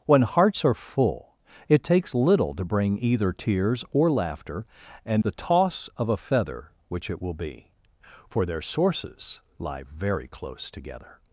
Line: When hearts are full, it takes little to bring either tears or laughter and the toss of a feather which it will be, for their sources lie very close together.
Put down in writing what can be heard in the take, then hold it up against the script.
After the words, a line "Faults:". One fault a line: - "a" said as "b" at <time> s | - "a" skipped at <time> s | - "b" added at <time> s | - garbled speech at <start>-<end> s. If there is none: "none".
When hearts are full, it takes little to bring either tears or laughter and the toss of a feather which it will be, for their sources lie very close together.
Faults:
none